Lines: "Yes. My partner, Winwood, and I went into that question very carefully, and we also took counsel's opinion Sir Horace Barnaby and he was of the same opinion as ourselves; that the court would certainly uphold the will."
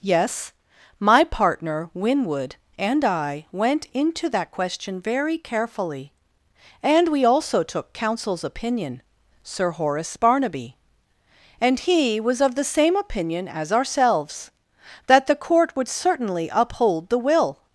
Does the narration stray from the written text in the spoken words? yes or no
no